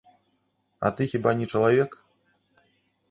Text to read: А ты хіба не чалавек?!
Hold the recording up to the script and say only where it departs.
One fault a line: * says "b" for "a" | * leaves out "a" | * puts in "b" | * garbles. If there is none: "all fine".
all fine